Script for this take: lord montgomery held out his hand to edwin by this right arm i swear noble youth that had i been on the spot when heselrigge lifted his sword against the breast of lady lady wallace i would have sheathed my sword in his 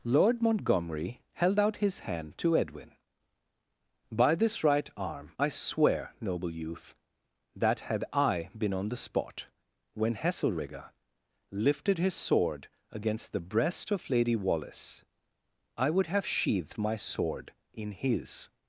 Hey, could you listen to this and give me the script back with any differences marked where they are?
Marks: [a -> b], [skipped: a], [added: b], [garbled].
lord montgomery held out his hand to edwin by this right arm i swear noble youth that had i been on the spot when heselrigge lifted his sword against the breast of lady [skipped: lady] wallace i would have sheathed my sword in his